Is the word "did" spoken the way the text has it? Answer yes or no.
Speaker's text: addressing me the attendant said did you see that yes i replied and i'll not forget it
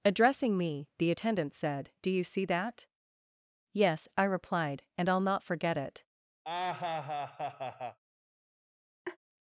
no